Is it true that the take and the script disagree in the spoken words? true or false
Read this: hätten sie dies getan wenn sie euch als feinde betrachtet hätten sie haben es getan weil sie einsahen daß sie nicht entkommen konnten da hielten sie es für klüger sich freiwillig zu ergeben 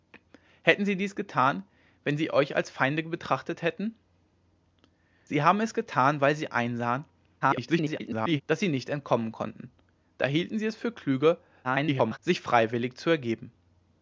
true